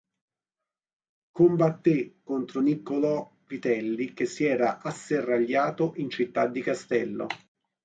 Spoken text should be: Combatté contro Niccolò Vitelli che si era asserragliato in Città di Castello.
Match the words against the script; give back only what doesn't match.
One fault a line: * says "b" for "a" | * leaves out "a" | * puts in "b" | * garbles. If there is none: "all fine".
all fine